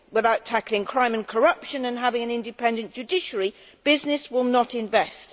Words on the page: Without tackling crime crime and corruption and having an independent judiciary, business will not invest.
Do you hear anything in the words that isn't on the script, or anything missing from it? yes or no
yes